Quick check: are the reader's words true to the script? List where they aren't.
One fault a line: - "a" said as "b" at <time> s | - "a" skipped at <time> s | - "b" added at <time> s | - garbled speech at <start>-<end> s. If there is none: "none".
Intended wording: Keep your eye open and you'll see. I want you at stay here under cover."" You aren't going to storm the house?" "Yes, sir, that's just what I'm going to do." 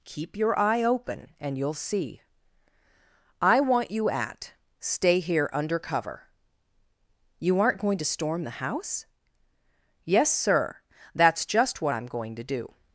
none